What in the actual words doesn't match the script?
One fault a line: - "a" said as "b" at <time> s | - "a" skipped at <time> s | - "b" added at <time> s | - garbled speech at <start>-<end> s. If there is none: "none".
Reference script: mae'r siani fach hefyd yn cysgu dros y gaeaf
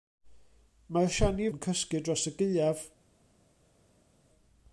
- "fach hefyd" skipped at 1.5 s